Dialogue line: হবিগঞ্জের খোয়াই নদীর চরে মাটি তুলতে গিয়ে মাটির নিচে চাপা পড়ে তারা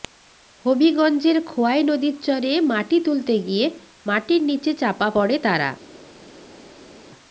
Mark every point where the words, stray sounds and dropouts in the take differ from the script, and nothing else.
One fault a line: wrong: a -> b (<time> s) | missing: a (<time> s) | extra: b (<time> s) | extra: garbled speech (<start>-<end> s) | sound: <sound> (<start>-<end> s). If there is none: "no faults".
no faults